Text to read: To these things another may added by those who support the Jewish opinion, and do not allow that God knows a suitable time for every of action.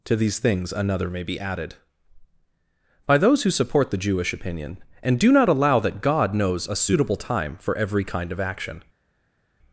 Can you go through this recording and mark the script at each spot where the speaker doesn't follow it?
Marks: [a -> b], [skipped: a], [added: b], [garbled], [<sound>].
To these things another may [added: be] added by those who support the Jewish opinion, and do not allow that God knows a suitable time for every [added: kind] of action.